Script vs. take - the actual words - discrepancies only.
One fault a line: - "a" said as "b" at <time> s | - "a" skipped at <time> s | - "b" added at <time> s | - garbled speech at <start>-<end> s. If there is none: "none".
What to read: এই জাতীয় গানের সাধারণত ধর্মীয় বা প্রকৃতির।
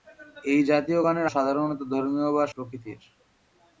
none